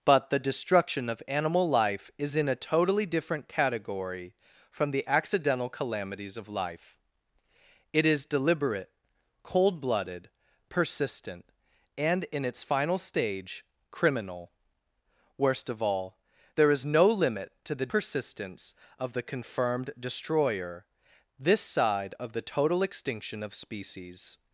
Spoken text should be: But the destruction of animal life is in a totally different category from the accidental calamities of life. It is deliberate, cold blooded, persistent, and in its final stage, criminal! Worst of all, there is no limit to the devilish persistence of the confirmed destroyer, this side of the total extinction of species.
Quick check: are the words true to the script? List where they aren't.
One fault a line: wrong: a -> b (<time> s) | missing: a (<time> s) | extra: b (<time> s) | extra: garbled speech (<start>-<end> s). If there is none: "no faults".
missing: devilish (17.9 s)